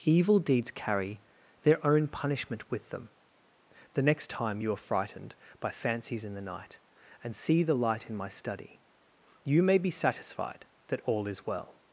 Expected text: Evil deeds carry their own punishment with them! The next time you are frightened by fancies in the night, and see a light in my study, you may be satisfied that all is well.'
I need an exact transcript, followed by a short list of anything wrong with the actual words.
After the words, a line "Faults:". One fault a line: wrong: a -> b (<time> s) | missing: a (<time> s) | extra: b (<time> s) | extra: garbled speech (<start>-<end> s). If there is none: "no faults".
Evil deeds carry their own punishment with them! The next time you are frightened by fancies in the night, and see the light in my study, you may be satisfied that all is well.'
Faults:
wrong: a -> the (7.6 s)